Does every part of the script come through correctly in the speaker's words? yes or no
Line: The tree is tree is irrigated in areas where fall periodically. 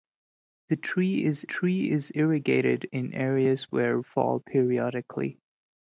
yes